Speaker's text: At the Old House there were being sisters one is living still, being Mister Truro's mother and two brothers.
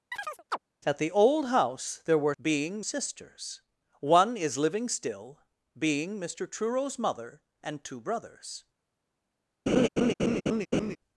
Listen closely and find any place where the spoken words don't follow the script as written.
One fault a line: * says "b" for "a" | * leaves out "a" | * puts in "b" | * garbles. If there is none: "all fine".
all fine